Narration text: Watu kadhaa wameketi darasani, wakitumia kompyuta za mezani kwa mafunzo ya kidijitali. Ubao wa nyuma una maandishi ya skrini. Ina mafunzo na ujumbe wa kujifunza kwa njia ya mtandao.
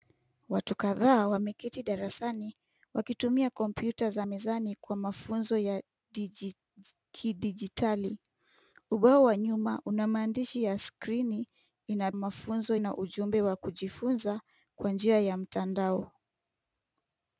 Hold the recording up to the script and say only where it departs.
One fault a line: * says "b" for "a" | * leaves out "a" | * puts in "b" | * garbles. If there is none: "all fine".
all fine